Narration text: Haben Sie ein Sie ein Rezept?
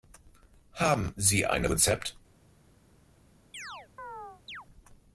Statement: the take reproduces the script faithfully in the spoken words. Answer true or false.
false